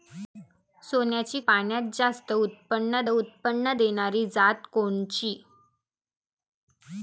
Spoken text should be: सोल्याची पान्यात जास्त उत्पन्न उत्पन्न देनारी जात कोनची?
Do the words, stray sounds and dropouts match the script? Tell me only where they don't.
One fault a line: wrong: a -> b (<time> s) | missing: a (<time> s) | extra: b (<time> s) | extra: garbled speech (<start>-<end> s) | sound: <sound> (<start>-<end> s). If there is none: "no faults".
no faults